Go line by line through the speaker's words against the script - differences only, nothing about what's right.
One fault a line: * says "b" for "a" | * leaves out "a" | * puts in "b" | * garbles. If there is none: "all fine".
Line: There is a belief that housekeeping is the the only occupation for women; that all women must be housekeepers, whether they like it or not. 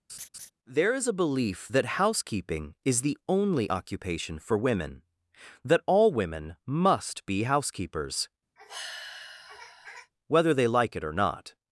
* leaves out "the"